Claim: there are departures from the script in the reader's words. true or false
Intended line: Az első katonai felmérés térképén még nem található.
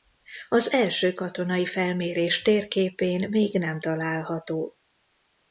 false